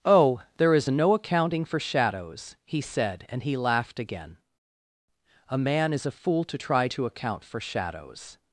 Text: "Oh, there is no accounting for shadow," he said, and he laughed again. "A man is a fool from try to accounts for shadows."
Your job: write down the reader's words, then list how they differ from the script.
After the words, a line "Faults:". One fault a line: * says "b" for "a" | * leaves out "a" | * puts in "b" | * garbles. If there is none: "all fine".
"Oh, there is no accounting for shadows," he said, and he laughed again. "A man is a fool to try to account for shadows."
Faults:
* says "shadows" for "shadow"
* says "to" for "from"
* says "account" for "accounts"